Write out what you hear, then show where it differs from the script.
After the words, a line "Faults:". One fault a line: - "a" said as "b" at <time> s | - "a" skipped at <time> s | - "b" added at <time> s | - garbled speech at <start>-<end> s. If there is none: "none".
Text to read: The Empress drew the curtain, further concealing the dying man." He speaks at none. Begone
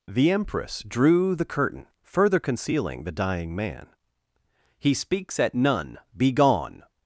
The Empress drew the curtain, further concealing the dying man." He speaks at none. Begone
Faults:
none